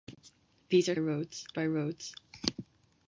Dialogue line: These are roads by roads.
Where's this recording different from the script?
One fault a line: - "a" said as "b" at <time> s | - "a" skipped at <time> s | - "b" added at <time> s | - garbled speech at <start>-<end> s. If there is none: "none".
none